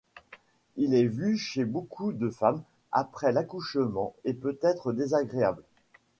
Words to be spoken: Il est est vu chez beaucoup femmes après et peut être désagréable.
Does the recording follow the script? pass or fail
fail